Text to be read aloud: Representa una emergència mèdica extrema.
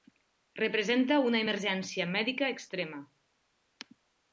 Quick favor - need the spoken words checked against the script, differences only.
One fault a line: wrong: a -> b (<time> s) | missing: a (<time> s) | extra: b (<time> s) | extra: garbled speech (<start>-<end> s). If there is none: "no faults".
no faults